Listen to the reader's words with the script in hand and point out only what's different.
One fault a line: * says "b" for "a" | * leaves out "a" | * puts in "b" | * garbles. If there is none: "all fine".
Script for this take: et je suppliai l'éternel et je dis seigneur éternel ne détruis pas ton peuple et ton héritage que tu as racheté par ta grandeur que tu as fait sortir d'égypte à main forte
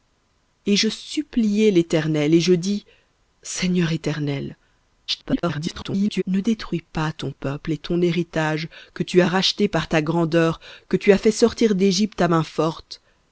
* garbles